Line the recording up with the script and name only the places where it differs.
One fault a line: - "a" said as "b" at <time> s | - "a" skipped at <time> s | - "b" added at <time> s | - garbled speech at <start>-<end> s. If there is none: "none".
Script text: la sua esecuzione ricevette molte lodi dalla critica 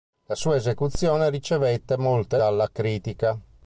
- "lodi" skipped at 2.4 s